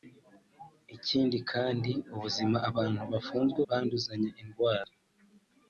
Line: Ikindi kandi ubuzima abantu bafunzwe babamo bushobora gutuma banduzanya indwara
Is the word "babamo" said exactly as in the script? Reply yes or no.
no